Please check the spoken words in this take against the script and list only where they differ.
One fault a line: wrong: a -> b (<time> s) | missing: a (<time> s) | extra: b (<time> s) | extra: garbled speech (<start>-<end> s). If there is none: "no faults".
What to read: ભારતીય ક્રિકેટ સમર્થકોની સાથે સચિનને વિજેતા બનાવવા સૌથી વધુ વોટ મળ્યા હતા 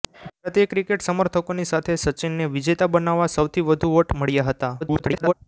extra: garbled speech (4.8-5.3 s)